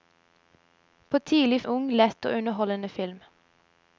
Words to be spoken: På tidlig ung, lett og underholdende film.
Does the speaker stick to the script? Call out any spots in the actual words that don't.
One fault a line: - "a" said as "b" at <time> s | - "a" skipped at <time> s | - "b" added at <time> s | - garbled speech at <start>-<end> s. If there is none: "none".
none